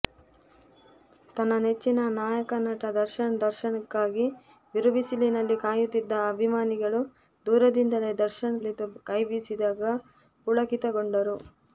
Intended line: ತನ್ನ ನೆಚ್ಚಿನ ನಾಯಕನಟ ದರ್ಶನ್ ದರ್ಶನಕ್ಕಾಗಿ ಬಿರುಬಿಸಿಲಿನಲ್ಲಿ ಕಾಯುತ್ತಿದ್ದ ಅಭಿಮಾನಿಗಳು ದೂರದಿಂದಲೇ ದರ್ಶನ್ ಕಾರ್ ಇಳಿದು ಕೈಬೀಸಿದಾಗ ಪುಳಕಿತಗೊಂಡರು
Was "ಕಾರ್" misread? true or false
true